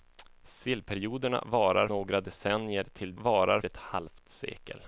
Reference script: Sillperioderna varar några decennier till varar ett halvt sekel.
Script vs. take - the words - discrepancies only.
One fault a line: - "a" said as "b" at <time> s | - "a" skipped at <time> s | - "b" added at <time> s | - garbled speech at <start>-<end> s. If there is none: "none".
none